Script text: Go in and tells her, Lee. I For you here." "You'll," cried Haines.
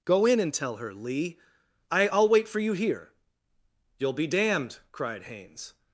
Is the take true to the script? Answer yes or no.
no